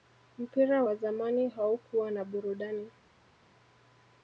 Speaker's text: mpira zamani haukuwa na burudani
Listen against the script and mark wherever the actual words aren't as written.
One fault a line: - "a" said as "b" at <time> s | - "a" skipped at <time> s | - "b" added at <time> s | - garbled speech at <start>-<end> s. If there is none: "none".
- "wa" added at 0.8 s